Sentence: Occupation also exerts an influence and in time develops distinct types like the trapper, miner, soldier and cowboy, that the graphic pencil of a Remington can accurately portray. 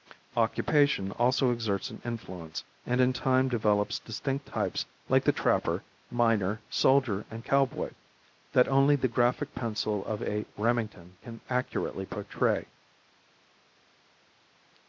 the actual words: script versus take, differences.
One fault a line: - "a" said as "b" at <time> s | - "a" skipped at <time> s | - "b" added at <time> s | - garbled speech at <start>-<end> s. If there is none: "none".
- "only" added at 8.7 s